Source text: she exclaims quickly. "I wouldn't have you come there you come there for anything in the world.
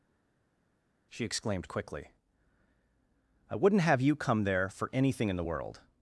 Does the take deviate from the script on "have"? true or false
false